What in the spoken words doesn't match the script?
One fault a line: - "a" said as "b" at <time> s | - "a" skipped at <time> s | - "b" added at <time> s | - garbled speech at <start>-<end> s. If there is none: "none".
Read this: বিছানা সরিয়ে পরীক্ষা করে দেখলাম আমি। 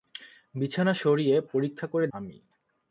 - "দেখলাম" skipped at 2.1 s